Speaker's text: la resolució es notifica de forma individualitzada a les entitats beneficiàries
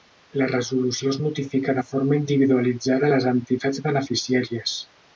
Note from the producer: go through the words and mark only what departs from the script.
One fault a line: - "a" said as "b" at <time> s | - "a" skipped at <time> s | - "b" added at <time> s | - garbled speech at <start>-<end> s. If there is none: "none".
none